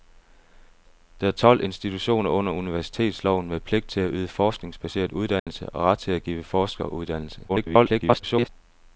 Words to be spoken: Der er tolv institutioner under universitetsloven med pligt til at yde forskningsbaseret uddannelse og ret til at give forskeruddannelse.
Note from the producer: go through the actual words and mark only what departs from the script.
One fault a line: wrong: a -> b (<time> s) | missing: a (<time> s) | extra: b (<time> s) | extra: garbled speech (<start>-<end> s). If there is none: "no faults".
extra: garbled speech (7.5-8.5 s)